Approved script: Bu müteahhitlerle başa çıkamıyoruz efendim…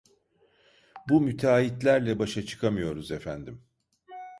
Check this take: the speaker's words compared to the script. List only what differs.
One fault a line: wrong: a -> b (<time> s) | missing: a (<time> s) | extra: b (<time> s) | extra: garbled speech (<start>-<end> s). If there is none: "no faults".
no faults